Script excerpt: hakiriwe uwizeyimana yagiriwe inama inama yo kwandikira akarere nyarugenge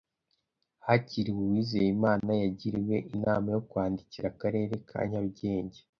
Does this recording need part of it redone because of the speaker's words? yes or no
yes